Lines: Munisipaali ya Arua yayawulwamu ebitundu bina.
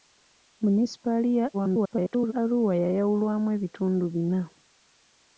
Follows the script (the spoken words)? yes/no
no